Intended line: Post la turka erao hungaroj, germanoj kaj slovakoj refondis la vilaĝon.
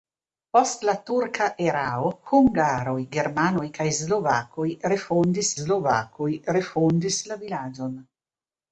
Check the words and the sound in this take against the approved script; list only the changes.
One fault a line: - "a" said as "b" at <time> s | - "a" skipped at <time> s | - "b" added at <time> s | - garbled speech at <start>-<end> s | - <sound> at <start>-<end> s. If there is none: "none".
- "slovakoj refondis" added at 5.6 s